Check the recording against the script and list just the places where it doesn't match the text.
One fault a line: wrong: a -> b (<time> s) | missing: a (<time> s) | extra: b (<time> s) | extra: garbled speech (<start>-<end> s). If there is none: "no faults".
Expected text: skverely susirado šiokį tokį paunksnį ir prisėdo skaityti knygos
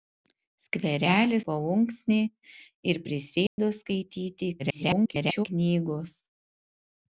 missing: susirado šiokį tokį (1.4 s)
extra: garbled speech (4.6-5.5 s)